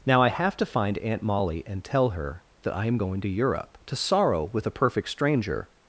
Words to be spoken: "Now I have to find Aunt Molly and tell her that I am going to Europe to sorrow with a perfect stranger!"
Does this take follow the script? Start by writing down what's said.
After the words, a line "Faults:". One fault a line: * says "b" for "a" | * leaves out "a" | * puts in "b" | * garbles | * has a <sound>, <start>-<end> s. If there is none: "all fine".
"Now I have to find Aunt Molly and tell her that I am going to Europe to sorrow with a perfect stranger!"
Faults:
all fine